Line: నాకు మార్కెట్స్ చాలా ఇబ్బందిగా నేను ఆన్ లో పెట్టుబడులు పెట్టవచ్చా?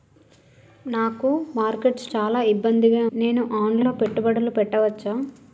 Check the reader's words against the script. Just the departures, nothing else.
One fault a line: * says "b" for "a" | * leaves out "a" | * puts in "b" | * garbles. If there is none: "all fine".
all fine